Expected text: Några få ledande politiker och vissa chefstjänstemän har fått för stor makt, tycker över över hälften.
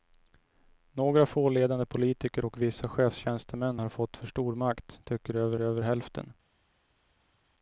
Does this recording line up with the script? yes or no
yes